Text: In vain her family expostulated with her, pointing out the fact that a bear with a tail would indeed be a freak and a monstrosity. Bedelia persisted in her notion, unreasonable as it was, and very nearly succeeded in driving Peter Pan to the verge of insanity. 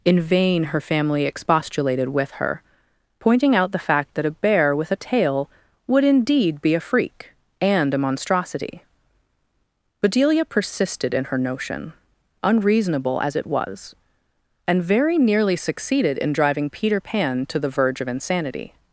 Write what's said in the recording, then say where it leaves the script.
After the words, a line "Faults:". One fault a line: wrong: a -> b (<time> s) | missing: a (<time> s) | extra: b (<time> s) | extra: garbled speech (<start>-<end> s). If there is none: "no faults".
In vain her family expostulated with her, pointing out the fact that a bear with a tail would indeed be a freak and a monstrosity. Bedelia persisted in her notion, unreasonable as it was, and very nearly succeeded in driving Peter Pan to the verge of insanity.
Faults:
no faults